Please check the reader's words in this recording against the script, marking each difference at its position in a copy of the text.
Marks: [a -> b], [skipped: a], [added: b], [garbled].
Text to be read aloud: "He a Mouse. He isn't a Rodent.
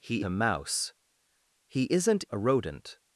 "He a Mouse. He isn't a Rodent.